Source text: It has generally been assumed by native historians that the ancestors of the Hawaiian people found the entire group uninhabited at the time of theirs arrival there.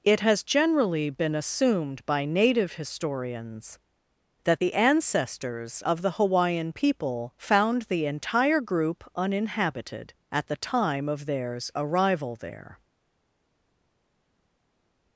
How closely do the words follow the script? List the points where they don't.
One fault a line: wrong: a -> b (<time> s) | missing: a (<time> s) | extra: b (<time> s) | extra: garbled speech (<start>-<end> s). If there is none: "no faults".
no faults